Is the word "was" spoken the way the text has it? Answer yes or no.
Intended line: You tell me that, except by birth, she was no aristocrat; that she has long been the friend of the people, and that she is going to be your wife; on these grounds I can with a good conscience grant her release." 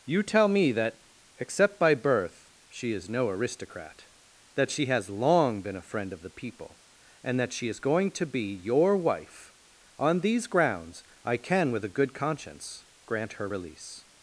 no